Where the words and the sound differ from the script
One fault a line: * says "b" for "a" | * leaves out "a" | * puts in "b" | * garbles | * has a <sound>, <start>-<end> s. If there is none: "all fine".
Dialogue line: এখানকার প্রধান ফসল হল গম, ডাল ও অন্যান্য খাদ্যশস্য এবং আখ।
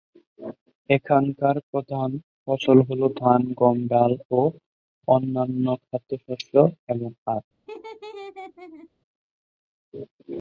* puts in "ধান"
* has a laugh, 7.7-8.9 s